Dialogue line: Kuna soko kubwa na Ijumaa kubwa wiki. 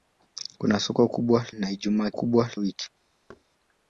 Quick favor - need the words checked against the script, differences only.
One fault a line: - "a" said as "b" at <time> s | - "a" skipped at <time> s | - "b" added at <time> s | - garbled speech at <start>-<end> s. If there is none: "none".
none